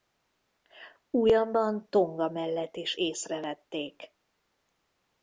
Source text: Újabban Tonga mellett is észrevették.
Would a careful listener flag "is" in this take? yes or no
no